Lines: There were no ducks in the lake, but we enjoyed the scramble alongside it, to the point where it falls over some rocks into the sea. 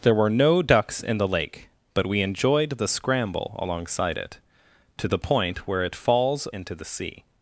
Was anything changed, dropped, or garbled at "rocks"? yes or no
yes